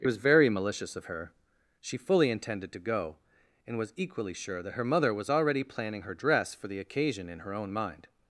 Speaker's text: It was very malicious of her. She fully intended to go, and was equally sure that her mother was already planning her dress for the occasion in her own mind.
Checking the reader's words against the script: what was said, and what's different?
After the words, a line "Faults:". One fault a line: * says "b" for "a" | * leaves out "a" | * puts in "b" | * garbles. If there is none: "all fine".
It was very malicious of her. She fully intended to go, and was equally sure that her mother was already planning her dress for the occasion in her own mind.
Faults:
all fine